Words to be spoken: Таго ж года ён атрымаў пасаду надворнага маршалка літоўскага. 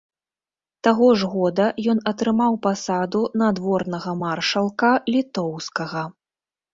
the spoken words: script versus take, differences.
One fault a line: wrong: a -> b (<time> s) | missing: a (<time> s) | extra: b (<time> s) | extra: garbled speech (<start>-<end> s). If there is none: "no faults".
no faults